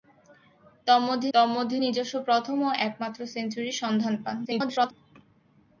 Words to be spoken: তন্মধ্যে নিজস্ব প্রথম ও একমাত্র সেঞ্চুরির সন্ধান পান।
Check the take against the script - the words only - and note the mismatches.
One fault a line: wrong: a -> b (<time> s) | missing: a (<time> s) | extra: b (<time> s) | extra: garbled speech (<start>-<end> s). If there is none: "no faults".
extra: তন্মধ্যে (1.3 s)
extra: garbled speech (4.4-4.9 s)